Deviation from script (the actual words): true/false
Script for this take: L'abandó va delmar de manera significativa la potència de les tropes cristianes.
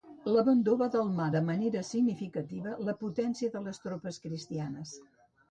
false